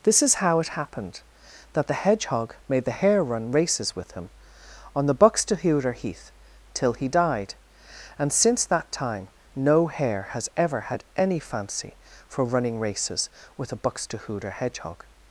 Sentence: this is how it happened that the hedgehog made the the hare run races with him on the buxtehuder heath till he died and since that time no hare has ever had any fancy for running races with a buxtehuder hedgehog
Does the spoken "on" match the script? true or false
true